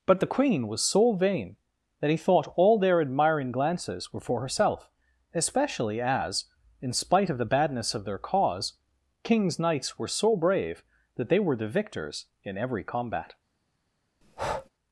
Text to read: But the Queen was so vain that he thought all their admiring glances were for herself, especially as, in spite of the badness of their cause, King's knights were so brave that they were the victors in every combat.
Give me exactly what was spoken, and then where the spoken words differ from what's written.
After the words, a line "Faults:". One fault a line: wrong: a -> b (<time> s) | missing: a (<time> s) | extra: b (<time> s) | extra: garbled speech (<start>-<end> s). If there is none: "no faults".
But the Queen was so vain that he thought all their admiring glances were for herself, especially as, in spite of the badness of their cause, King's knights were so brave that they were the victors in every combat.
Faults:
no faults